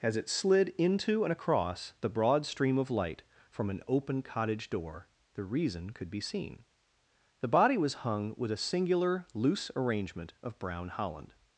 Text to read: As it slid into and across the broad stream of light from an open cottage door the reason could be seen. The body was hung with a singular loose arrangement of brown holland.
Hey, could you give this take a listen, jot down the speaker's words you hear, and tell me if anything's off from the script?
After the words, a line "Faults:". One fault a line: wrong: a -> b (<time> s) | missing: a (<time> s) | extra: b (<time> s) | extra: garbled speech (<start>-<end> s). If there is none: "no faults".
As it slid into and across the broad stream of light from an open cottage door the reason could be seen. The body was hung with a singular loose arrangement of brown holland.
Faults:
no faults